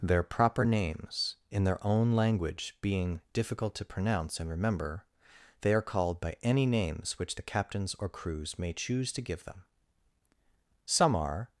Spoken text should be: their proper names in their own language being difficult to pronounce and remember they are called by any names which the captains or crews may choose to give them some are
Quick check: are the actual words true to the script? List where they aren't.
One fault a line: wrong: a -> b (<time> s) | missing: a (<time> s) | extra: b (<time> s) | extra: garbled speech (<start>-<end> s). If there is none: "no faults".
no faults